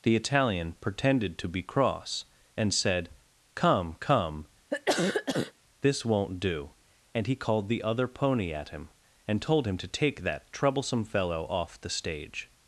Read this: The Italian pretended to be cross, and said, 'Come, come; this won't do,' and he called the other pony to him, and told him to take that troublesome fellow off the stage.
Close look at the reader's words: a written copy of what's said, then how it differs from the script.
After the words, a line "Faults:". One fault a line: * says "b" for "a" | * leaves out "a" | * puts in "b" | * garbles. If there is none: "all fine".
The Italian pretended to be cross, and said, 'Come, come; this won't do,' and he called the other pony at him, and told him to take that troublesome fellow off the stage.
Faults:
* says "at" for "to"